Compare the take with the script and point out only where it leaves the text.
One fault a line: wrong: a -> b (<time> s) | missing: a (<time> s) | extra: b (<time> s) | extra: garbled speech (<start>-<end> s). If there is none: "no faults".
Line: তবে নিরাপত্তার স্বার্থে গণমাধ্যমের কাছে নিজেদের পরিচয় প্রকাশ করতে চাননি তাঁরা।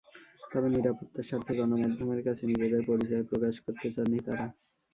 no faults